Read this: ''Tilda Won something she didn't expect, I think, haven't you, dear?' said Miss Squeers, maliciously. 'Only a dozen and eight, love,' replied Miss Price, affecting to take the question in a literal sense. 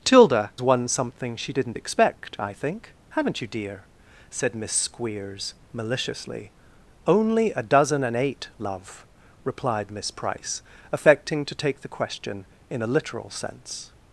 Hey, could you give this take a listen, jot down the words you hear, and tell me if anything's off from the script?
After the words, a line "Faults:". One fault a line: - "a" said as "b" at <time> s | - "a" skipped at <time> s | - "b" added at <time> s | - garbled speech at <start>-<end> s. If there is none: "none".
''Tilda Won something she didn't expect, I think, haven't you, dear?' said Miss Squeers, maliciously. 'Only a dozen and eight, love,' replied Miss Price, affecting to take the question in a literal sense.
Faults:
none